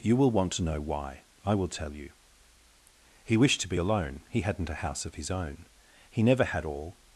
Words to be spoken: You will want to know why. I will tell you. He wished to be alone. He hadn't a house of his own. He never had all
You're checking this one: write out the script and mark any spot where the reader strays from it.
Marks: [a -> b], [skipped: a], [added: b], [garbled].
You will want to know why. I will tell you. He wished to be alone. He hadn't a house of his own. He never had all